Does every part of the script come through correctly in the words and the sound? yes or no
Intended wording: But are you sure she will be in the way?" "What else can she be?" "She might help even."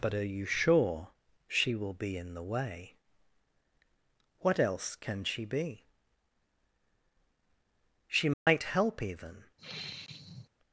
no